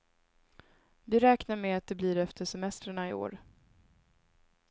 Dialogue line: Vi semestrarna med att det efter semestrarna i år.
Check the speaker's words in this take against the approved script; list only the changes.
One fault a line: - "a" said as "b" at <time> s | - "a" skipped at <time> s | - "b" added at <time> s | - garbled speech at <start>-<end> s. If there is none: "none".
- "semestrarna" said as "räknar" at 1.2 s
- "blir" added at 1.9 s